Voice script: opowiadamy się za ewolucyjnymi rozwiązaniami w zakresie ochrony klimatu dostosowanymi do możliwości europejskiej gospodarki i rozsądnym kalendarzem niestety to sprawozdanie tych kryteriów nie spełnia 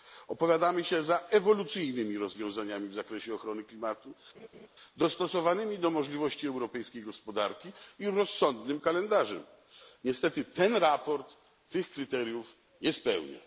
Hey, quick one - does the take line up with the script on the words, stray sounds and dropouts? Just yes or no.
no